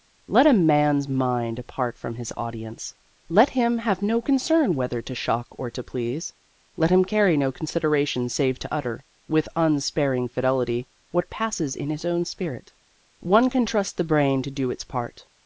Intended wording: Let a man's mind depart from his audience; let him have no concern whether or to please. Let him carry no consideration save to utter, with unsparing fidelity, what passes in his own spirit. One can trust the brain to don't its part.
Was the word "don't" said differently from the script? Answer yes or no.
yes